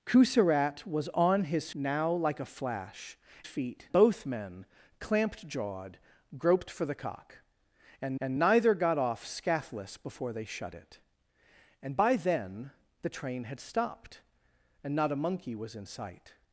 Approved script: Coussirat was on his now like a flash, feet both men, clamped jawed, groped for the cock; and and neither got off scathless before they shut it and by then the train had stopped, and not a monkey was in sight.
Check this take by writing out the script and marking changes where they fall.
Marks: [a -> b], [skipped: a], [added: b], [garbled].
Coussirat was on his now like a flash, feet both men, clamped jawed, groped for the cock; and and neither got off scathless before they shut it and by then the train had stopped, and not a monkey was in sight.